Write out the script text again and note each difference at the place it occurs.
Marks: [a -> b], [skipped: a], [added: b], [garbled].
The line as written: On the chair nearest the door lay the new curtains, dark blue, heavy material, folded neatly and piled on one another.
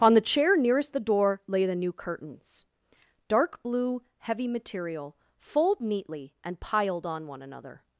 On the chair nearest the door lay the new curtains, dark blue, heavy material, [folded -> fold] neatly and piled on one another.